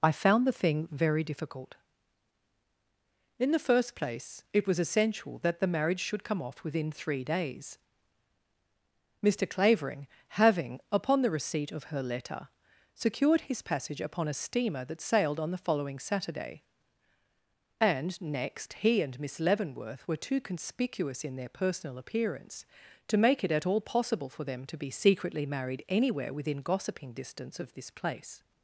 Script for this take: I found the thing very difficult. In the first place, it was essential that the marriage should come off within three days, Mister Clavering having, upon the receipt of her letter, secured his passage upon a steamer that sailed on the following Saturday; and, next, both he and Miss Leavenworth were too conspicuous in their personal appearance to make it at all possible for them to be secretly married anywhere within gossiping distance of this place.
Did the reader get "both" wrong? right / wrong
wrong